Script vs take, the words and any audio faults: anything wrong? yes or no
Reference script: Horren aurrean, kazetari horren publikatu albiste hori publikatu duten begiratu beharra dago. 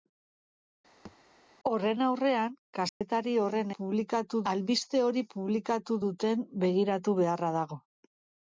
yes